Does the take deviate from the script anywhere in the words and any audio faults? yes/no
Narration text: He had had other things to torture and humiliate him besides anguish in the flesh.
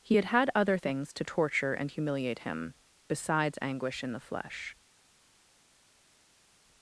no